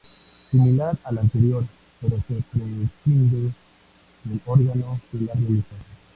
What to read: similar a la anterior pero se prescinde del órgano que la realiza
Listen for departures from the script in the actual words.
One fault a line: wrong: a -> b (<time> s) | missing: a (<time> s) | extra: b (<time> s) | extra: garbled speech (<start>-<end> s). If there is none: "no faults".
no faults